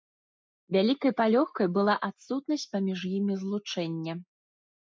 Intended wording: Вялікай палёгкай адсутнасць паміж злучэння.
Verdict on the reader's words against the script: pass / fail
fail